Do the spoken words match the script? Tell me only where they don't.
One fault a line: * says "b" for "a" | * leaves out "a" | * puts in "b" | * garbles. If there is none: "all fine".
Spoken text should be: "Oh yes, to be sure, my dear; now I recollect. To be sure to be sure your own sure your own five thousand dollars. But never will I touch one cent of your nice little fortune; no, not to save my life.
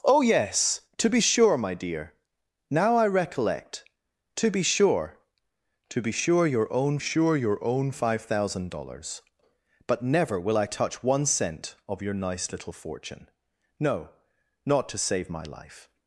all fine